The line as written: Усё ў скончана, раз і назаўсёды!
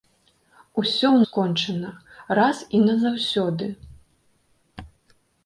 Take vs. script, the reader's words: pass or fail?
pass